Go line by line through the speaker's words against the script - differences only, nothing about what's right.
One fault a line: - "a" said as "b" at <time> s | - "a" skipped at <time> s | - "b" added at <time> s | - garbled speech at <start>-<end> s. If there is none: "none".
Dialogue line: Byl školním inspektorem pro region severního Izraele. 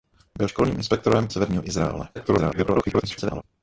- "pro region" skipped at 1.3 s
- garbled speech at 2.2-3.4 s